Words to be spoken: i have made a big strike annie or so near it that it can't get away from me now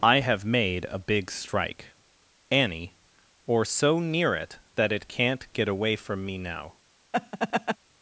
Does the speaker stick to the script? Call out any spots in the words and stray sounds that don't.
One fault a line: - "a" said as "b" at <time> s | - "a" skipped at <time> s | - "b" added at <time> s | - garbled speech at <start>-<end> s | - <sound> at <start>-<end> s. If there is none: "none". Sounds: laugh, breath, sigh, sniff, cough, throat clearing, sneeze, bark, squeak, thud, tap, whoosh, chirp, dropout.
- laugh at 7.1-7.8 s